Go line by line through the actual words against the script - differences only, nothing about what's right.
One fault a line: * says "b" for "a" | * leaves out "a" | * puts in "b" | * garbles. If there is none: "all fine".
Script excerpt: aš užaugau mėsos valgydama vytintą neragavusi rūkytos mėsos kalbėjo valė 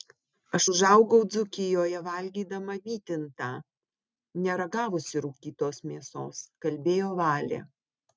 * says "dzūkijoje" for "mėsos"